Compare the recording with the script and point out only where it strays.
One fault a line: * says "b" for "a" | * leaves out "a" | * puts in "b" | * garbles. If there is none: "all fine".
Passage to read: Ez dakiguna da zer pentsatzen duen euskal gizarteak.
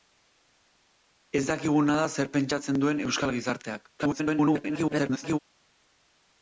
* garbles